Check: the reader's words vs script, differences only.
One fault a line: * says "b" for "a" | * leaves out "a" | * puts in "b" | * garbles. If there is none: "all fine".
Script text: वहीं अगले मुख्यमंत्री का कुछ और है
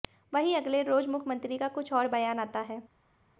* puts in "रोज"
* puts in "बयान आता"